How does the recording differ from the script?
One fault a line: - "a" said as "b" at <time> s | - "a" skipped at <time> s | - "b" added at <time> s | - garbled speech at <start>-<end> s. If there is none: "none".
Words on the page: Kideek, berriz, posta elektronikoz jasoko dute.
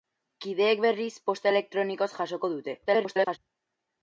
- garbled speech at 2.9-3.4 s